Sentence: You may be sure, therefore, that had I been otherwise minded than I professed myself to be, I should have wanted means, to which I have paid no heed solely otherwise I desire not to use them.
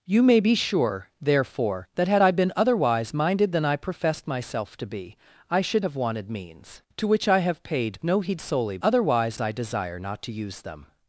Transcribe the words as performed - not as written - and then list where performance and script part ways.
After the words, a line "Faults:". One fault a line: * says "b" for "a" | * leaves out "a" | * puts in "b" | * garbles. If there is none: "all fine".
You may be sure, therefore, that had I been otherwise minded than I professed myself to be, I should have wanted means, to which I have paid no heed solely otherwise I desire not to use them.
Faults:
all fine